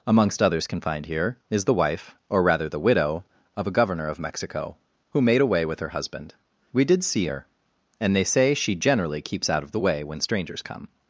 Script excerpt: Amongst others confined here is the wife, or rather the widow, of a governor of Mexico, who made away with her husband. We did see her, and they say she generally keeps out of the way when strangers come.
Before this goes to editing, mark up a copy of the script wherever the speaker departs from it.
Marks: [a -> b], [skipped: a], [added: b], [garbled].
Amongst others confined here is the wife, or rather the widow, of a governor of Mexico, who made away with her husband. We did see her, and they say she generally keeps out of the way when strangers come.